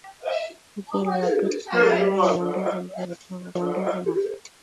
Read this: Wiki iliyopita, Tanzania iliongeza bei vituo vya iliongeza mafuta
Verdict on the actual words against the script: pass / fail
pass